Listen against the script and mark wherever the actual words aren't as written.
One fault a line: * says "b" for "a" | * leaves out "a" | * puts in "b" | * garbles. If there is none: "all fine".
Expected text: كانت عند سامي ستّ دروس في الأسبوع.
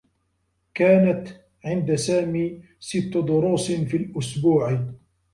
all fine